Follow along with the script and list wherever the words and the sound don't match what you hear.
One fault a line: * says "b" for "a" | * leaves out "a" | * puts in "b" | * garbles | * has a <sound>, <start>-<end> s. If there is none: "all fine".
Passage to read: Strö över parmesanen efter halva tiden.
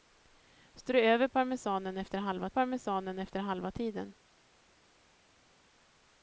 * puts in "parmesanen efter halva"